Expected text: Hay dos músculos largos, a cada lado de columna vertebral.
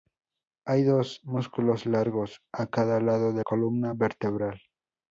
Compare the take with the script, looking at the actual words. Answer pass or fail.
pass